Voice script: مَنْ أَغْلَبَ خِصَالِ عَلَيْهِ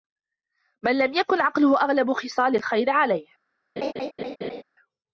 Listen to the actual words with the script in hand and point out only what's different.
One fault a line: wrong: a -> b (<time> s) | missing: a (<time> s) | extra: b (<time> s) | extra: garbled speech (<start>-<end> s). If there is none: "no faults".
extra: لَمْ يَكُنْ عَقْلُهُ (1.0 s)
extra: الْخَيْرِ (2.5 s)